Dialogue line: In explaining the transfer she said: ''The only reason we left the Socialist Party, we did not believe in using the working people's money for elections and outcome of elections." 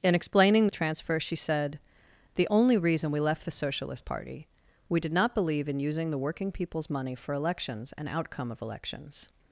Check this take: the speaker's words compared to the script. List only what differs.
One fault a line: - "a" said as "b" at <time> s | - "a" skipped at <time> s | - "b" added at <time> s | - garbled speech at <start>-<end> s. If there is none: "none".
none